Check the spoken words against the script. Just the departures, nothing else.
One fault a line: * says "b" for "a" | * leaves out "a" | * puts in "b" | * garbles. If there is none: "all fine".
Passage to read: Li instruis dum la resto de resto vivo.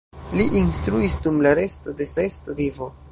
all fine